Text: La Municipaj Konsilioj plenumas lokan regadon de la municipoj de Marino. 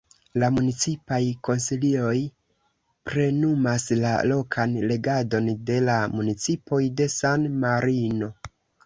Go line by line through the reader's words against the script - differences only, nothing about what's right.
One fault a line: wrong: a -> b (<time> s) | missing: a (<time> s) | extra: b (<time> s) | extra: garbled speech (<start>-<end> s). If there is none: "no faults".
extra: la (4.0 s)
extra: San (7.2 s)